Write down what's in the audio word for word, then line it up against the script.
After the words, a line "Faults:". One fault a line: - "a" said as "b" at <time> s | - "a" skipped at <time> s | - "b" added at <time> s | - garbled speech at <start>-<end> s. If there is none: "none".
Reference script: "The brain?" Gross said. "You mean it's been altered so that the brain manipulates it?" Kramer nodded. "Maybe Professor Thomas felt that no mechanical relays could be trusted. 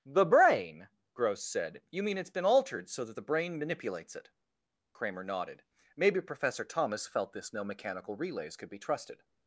"The brain?" Gross said. "You mean it's been altered so that the brain manipulates it?" Kramer nodded. "Maybe Professor Thomas felt this no mechanical relays could be trusted.
Faults:
- "that" said as "this" at 7.3 s